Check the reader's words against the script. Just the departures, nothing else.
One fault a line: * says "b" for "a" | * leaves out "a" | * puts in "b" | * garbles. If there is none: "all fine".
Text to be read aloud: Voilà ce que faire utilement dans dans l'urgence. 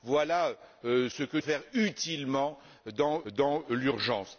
all fine